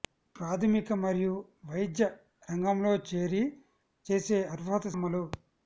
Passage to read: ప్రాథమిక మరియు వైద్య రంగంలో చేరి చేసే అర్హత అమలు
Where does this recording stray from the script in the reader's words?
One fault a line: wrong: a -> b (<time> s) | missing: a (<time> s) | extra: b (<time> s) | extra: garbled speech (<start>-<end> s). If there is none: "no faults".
no faults